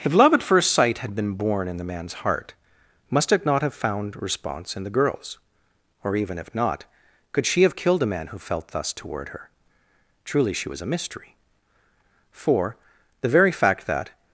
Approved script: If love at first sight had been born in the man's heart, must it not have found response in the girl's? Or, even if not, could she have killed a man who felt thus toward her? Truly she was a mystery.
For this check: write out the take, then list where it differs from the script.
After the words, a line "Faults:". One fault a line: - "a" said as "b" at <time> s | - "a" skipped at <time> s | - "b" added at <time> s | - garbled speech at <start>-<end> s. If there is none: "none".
If love at first sight had been born in the man's heart, must it not have found response in the girl's? Or, even if not, could she have killed a man who felt thus toward her? Truly she was a mystery. For, the very fact that
Faults:
- "For the very fact that" added at 12.3 s